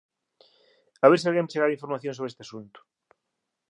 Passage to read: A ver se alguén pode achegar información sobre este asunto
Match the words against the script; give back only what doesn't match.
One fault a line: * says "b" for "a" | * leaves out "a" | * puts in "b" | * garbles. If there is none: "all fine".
* leaves out "pode"